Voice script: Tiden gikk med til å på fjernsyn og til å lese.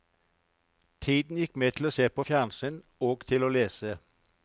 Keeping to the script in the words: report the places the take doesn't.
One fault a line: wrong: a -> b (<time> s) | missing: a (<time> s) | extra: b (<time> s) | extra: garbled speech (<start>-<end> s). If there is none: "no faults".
extra: se (1.9 s)